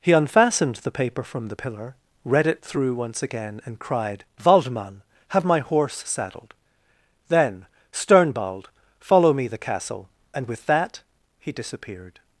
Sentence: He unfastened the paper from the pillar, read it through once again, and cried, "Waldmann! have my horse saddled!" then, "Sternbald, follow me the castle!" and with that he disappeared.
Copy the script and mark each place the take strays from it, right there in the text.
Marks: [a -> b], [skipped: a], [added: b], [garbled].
He unfastened the paper from the pillar, read it through once again, and cried, "Waldmann! have my horse saddled!" then, "Sternbald, follow me the castle!" and with that he disappeared.